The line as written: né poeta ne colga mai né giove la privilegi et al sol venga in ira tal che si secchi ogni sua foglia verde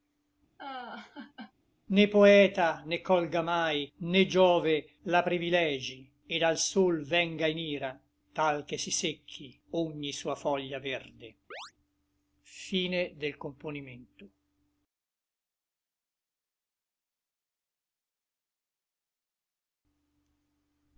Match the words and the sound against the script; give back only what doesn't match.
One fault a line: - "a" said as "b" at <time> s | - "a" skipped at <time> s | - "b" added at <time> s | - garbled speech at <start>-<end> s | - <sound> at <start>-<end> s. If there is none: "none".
- laugh at 0.6-1.5 s
- chirp at 11.5-11.7 s